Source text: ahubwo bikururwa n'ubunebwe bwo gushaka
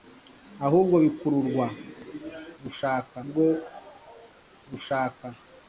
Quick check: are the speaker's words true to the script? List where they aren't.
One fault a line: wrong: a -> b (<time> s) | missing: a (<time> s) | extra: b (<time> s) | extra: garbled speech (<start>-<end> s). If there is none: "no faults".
wrong: n'ubunebwe -> gushaka (2.6 s)